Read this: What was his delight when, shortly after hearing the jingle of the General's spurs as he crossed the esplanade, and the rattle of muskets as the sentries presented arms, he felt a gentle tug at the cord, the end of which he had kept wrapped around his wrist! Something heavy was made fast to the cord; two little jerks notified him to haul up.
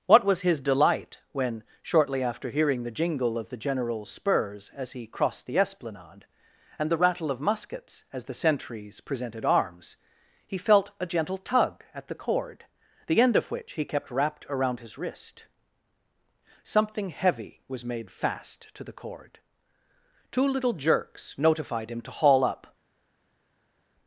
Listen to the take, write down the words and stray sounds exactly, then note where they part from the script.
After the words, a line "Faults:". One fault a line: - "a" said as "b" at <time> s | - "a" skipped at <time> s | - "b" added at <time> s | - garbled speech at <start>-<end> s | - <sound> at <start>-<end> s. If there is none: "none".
What was his delight when, shortly after hearing the jingle of the General's spurs as he crossed the esplanade, and the rattle of muskets as the sentries presented arms, he felt a gentle tug at the cord, the end of which he kept wrapped around his wrist! Something heavy was made fast to the cord; two little jerks notified him to haul up.
Faults:
- "had" skipped at 13.8 s